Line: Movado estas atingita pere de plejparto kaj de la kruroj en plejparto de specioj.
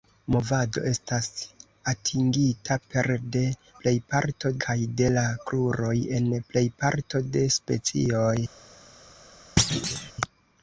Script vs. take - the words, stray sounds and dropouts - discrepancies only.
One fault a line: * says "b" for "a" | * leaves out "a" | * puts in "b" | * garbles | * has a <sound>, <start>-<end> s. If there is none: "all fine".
* has a thud, 9.6-10.1 s